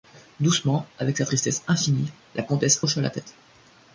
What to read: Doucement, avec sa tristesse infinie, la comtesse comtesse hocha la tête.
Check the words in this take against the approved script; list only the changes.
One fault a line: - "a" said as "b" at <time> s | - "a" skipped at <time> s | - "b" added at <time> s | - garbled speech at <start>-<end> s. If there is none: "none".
- "comtesse" skipped at 2.8 s